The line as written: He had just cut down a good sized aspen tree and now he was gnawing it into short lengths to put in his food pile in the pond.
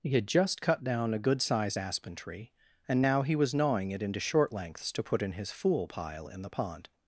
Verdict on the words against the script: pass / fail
fail